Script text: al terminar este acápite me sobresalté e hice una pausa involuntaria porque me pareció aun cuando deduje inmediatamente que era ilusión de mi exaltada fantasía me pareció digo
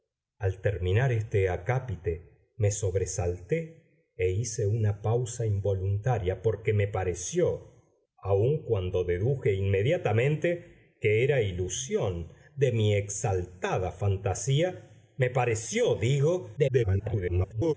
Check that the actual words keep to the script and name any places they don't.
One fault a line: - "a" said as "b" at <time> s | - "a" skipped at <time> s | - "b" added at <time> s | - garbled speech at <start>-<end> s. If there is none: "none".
- garbled speech at 16.6-17.7 s